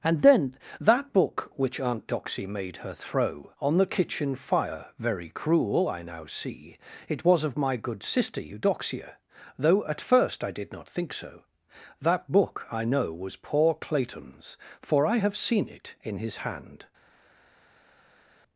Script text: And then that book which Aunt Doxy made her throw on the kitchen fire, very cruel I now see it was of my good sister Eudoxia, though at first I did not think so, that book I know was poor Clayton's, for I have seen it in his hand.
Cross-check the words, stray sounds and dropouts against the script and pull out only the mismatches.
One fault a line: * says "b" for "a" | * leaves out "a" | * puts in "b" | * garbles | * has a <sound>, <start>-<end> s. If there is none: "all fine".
all fine